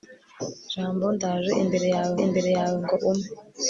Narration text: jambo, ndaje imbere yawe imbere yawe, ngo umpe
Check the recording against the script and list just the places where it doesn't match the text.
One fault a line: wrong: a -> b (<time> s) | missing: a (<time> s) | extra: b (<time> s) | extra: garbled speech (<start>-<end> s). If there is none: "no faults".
no faults